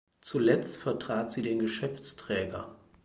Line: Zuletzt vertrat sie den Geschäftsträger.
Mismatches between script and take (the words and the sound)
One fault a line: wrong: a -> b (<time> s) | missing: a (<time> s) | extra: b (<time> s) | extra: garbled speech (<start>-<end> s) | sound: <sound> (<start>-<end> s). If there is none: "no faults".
no faults